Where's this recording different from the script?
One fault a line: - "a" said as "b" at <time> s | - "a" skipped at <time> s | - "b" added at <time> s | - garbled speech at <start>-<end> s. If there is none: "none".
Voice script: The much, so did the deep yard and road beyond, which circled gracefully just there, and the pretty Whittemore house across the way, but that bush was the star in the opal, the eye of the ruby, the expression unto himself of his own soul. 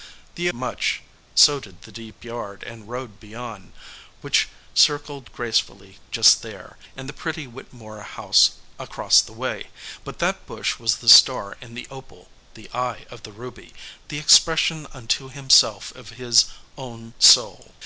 none